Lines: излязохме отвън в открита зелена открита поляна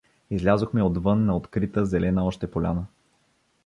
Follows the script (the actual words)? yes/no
no